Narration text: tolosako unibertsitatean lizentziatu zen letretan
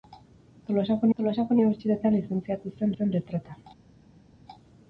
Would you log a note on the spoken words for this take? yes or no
yes